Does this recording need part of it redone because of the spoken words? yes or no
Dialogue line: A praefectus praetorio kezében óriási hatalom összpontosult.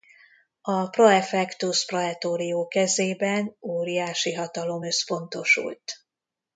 no